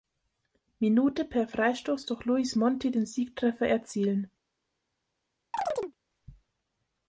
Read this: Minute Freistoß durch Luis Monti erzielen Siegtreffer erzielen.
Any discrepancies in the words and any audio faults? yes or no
yes